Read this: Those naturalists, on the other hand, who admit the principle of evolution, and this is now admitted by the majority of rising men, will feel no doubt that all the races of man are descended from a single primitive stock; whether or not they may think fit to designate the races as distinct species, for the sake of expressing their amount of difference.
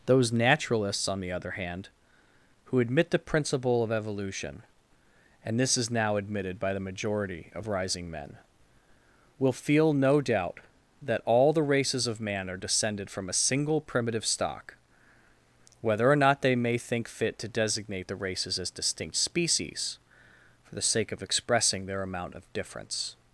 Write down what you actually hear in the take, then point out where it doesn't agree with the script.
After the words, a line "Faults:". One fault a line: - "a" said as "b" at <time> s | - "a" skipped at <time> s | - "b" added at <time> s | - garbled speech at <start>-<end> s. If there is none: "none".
Those naturalists, on the other hand, who admit the principle of evolution, and this is now admitted by the majority of rising men, will feel no doubt that all the races of man are descended from a single primitive stock; whether or not they may think fit to designate the races as distinct species, for the sake of expressing their amount of difference.
Faults:
none